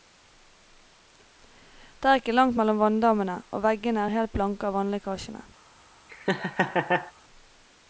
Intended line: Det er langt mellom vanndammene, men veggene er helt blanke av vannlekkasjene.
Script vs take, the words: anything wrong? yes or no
yes